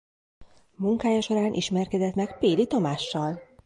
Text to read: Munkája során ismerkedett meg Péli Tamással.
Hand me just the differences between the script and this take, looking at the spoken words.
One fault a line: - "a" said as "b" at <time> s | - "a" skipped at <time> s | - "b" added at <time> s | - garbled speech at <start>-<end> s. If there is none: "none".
none